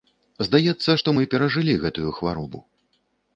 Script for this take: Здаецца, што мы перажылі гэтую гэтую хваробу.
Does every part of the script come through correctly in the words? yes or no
no